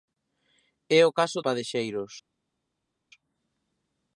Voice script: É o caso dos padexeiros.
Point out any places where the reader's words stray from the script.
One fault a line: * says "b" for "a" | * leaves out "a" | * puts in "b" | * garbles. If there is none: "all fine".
* leaves out "dos"